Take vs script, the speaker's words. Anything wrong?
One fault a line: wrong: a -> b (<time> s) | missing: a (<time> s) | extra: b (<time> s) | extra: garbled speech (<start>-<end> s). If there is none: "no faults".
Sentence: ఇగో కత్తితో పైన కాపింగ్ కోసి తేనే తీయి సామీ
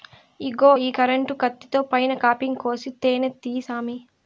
extra: ఈ కరెంటు (0.8 s)